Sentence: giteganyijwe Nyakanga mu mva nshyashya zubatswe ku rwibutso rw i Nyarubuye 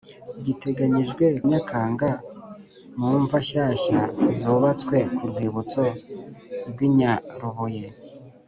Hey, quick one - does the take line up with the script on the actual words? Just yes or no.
yes